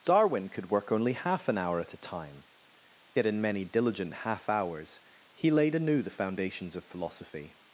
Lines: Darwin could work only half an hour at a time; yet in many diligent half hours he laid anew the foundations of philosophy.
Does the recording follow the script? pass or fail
pass